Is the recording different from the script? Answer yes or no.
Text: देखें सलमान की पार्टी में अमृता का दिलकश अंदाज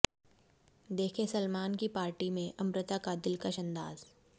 no